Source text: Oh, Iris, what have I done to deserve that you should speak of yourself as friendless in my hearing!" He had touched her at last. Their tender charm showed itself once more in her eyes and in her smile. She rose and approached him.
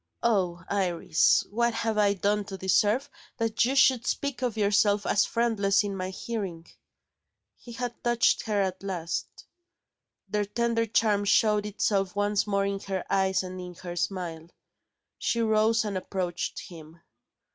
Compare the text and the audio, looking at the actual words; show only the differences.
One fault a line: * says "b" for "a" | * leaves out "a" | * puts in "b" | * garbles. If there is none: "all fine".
all fine